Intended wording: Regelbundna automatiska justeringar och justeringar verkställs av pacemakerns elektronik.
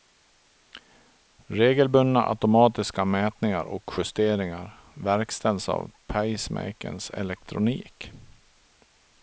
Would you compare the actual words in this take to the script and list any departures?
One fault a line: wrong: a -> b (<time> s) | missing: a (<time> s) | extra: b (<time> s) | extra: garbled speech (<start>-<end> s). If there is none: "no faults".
wrong: justeringar -> mätningar (3.0 s)